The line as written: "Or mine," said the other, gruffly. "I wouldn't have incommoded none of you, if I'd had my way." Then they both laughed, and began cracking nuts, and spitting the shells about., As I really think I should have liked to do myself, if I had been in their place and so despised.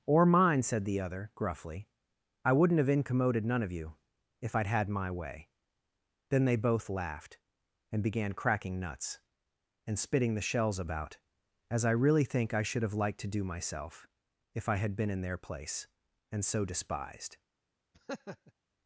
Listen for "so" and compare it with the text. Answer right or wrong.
right